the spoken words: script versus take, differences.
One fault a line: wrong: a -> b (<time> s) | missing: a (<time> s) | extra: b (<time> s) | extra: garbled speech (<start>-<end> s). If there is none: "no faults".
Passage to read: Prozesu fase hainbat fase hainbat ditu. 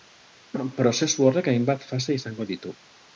wrong: fase -> horrek (1.3 s)
wrong: hainbat -> izango (2.2 s)